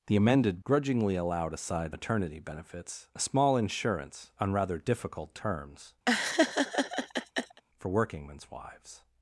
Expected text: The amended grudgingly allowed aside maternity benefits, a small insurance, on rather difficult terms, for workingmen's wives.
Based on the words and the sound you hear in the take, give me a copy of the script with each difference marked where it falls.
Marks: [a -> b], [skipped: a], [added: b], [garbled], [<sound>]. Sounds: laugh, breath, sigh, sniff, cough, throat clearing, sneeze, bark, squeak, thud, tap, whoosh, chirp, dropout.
The amended grudgingly allowed aside maternity benefits, a small insurance, on rather difficult terms, [laugh] for workingmen's wives.